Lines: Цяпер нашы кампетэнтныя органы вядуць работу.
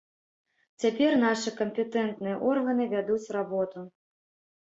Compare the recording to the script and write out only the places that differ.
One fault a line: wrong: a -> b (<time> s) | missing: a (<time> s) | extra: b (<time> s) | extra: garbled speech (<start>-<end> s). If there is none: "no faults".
no faults